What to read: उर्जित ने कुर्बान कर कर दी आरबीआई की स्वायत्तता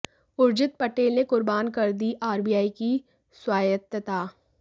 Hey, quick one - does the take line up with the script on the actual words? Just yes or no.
no